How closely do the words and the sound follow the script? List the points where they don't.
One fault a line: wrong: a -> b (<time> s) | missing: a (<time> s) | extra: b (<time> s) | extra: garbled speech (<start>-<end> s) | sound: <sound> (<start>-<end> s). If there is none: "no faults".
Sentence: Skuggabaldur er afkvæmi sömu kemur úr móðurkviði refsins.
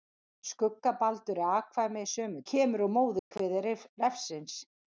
sound: dropout (3.2-3.3 s)